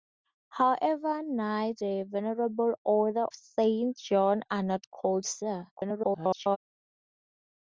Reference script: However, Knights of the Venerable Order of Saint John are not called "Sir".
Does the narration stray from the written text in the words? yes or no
yes